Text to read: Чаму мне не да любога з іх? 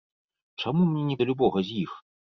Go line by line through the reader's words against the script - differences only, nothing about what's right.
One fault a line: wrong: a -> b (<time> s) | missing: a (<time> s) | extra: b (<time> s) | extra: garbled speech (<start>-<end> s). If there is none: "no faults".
no faults